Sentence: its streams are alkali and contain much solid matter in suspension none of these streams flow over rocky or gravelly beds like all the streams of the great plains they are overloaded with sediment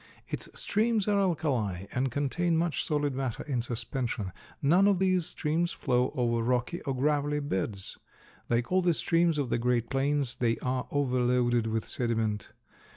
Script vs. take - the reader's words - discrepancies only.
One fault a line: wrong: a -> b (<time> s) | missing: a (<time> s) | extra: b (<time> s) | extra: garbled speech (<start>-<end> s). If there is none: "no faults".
no faults